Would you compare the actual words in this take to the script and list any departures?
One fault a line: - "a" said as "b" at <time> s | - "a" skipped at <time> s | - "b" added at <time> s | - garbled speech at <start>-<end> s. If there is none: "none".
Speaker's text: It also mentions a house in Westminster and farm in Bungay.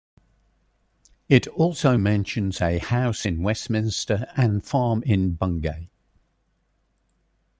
none